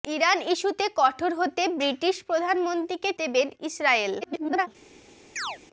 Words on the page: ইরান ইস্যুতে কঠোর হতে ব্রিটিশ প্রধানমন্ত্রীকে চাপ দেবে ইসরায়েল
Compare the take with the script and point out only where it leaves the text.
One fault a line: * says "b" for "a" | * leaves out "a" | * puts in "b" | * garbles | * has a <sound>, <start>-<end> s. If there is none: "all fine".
* leaves out "চাপ"
* garbles
* has a chirp, 5.4-5.6 s